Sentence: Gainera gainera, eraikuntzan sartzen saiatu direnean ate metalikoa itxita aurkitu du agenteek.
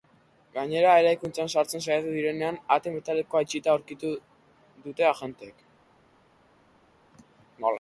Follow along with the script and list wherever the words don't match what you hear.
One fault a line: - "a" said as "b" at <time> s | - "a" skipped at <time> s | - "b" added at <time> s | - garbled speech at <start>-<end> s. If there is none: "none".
- "gainera" skipped at 0.9 s
- "du" said as "dute" at 4.9 s